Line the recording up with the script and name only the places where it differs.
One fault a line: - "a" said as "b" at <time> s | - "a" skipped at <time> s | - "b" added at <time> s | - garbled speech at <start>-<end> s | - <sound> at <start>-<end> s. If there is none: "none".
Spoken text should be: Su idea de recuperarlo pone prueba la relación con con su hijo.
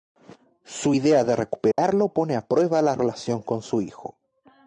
- dropout at 1.7-1.8 s
- "a" added at 2.4 s
- "con" skipped at 3.6 s